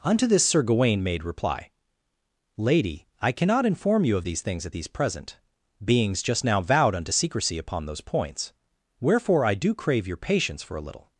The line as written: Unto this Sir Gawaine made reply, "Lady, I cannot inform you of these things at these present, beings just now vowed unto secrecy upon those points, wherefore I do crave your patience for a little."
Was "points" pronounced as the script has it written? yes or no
yes